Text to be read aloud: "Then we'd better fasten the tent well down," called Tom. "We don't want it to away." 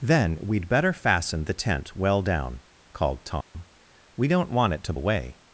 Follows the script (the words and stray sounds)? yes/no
no